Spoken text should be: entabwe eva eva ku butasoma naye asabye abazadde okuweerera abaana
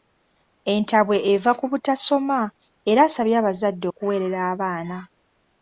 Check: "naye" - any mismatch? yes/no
yes